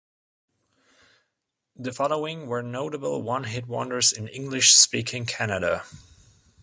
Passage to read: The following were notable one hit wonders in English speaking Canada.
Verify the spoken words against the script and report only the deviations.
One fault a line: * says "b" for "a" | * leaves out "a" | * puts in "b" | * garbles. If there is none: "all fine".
all fine